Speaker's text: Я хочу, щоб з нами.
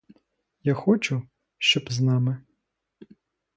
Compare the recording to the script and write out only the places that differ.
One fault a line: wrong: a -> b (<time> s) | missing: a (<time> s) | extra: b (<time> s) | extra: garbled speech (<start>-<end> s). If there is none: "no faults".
no faults